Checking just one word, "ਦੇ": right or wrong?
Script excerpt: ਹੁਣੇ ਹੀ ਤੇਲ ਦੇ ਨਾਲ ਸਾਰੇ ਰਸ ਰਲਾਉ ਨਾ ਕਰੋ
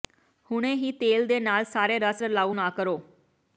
right